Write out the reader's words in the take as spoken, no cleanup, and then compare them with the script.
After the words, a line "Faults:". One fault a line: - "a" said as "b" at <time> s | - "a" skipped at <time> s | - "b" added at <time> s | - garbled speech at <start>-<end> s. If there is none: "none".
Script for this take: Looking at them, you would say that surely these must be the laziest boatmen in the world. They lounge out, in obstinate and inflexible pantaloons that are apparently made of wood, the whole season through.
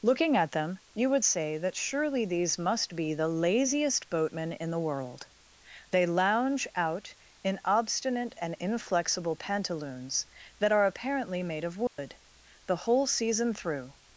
Looking at them, you would say that surely these must be the laziest boatmen in the world. They lounge out, in obstinate and inflexible pantaloons that are apparently made of wood, the whole season through.
Faults:
none